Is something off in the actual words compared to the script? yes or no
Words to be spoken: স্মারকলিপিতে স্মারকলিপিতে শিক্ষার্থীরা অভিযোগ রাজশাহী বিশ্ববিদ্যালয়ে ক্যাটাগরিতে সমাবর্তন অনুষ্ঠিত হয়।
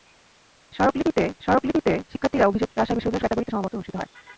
no